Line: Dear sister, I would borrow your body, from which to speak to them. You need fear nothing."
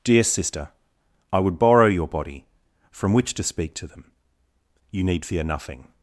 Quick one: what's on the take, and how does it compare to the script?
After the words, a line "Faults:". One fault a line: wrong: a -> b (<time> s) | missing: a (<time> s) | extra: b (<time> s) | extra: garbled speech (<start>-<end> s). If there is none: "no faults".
Dear sister, I would borrow your body, from which to speak to them. You need fear nothing."
Faults:
no faults